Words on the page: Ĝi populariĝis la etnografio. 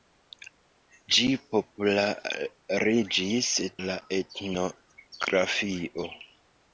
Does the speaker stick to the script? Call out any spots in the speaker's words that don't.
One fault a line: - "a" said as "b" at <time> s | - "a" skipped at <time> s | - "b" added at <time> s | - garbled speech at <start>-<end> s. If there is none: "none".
none